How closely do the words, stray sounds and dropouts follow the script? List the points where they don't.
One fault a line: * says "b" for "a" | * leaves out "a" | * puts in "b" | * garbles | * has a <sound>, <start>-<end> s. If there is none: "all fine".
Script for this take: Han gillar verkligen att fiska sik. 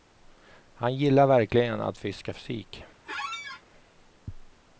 * has a squeak, 3.0-3.6 s